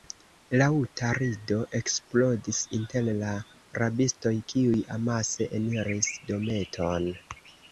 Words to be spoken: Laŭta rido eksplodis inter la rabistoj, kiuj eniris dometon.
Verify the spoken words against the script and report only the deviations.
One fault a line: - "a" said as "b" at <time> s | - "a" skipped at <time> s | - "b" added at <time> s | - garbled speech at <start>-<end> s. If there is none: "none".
- "amase" added at 5.0 s